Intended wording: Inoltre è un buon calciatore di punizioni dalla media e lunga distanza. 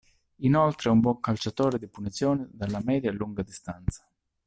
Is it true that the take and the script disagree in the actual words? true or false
false